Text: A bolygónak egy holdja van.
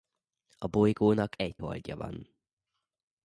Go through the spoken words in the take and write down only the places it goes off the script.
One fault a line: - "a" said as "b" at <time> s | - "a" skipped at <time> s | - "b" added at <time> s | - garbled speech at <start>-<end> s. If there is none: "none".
none